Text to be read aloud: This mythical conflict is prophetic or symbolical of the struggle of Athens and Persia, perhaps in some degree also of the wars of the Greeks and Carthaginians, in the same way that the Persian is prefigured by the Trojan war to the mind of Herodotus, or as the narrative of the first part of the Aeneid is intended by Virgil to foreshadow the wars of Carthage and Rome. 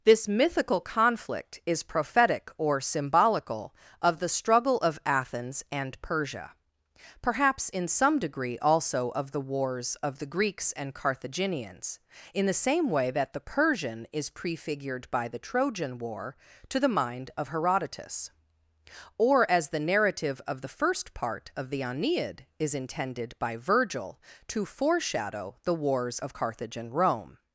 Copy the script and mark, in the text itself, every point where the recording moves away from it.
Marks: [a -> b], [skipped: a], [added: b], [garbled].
This mythical conflict is prophetic or symbolical of the struggle of Athens and Persia, perhaps in some degree also of the wars of the Greeks and Carthaginians, in the same way that the Persian is prefigured by the Trojan war to the mind of Herodotus, or as the narrative of the first part of the Aeneid is intended by Virgil to foreshadow the wars of Carthage and Rome.